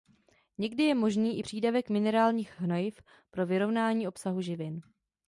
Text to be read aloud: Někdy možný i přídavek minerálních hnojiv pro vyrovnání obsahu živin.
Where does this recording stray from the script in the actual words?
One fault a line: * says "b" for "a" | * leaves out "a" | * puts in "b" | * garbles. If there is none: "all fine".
* puts in "je"